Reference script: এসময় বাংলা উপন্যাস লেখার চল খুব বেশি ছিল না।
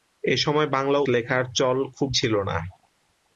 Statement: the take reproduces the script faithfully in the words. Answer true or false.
false